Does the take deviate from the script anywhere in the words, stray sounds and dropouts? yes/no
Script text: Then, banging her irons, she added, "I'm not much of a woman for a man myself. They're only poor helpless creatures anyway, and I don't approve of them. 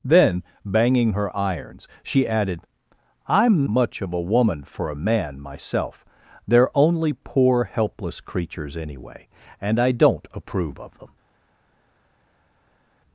yes